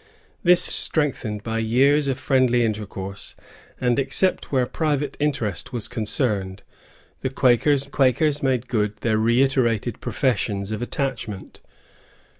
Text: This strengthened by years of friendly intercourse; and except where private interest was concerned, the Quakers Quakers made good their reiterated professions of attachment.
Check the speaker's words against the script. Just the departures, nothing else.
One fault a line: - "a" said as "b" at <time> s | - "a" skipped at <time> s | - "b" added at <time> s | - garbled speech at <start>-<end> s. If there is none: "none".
none